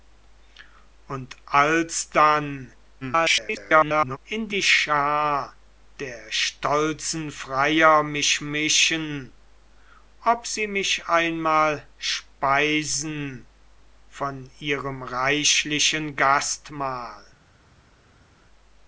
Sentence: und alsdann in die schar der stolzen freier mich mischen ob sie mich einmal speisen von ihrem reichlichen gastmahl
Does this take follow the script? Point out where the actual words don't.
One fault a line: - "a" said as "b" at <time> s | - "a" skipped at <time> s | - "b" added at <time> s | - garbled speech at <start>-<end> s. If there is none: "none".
- garbled speech at 3.0-4.2 s